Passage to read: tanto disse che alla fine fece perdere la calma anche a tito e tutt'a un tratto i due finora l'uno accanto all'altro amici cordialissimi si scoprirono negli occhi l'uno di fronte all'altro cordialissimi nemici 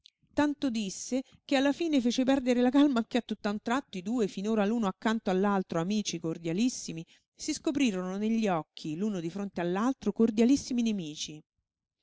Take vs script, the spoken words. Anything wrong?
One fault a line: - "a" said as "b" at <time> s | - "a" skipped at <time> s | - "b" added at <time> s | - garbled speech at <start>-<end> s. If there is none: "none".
- "tito e" skipped at 3.2 s